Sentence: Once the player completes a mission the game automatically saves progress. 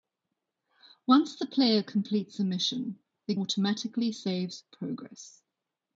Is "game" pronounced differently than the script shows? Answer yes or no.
yes